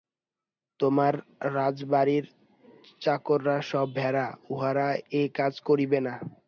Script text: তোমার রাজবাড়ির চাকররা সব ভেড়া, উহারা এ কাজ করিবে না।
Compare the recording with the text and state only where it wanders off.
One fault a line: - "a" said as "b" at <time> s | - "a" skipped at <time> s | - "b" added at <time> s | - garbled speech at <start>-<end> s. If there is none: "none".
none